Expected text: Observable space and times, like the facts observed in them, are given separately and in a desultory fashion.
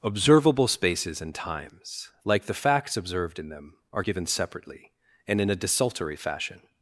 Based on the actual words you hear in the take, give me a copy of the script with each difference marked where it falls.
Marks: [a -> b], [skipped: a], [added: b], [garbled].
Observable [space -> spaces] and times, like the facts observed in them, are given separately and in a desultory fashion.